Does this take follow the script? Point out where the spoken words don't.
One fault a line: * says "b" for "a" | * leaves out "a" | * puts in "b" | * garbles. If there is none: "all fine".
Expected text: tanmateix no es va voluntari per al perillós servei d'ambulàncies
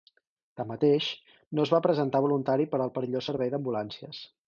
* puts in "presentar"